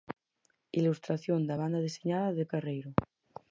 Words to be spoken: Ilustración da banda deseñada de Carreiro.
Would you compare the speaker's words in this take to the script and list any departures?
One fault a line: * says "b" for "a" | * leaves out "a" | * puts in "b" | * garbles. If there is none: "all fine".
all fine